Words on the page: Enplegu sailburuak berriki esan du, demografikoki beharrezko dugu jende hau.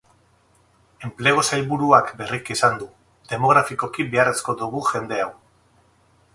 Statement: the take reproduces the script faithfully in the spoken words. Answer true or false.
true